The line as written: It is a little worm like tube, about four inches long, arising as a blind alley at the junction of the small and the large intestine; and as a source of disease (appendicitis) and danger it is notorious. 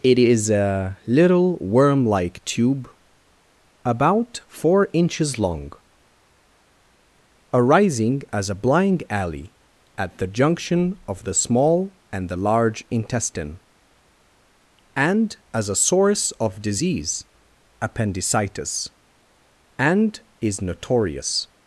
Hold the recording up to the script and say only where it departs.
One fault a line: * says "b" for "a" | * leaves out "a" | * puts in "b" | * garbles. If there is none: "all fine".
* leaves out "danger it"